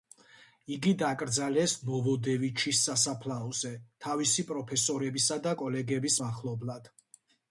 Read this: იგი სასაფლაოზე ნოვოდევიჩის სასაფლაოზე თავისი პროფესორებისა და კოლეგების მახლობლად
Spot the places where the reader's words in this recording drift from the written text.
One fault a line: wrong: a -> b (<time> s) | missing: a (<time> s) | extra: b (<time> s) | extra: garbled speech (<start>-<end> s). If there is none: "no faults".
wrong: სასაფლაოზე -> დაკრძალეს (1.0 s)